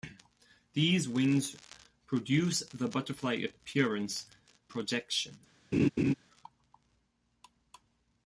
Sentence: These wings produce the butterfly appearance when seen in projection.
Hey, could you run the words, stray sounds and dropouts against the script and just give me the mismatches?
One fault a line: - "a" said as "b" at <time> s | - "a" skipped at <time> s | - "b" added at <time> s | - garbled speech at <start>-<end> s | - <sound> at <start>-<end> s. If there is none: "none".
- "when seen in" skipped at 4.3 s
- laugh at 5.7-6.1 s